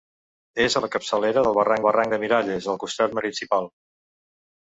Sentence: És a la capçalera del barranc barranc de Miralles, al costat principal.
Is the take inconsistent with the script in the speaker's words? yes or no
no